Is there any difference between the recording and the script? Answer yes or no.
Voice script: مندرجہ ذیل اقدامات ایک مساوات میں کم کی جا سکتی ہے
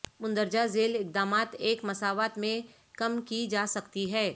no